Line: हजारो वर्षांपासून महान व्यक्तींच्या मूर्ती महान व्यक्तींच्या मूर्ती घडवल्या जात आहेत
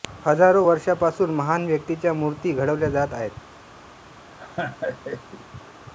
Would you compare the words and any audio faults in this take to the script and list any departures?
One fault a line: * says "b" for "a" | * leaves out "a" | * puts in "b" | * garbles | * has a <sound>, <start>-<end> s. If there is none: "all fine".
* leaves out "महान व्यक्तींच्या मूर्ती"
* has a laugh, 4.4-5.5 s